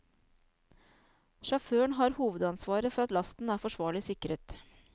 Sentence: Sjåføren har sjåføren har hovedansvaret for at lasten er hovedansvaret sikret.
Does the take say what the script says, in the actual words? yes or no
no